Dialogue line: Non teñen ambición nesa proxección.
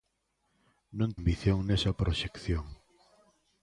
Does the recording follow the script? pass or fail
fail